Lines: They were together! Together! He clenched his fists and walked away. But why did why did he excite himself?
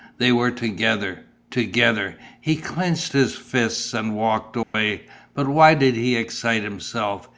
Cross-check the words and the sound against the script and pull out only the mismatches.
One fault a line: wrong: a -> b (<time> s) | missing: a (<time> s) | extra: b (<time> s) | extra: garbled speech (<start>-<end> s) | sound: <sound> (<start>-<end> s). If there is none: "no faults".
sound: dropout (4.6-4.7 s)
missing: why did (5.9 s)